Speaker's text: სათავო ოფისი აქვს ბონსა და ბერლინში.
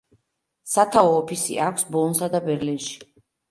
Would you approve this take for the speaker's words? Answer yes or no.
yes